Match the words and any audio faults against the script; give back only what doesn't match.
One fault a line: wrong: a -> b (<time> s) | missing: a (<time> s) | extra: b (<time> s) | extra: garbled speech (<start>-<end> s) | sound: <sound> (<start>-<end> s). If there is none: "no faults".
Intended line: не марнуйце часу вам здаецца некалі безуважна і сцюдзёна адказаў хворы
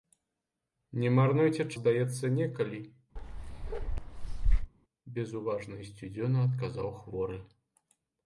missing: часу вам (1.6 s)
sound: bark (3.2-4.7 s)